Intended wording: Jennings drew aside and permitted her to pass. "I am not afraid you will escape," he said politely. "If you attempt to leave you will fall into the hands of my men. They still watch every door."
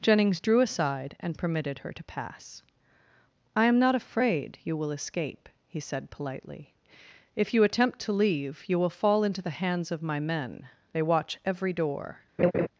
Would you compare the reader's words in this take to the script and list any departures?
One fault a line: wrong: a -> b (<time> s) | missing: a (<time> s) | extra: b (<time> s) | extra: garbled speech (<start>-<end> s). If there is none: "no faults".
missing: still (11.0 s)